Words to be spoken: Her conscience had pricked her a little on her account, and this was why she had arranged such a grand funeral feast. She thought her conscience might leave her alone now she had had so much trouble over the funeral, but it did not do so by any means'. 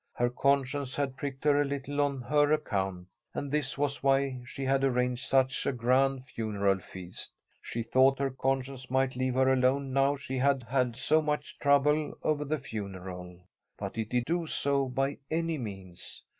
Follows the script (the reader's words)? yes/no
no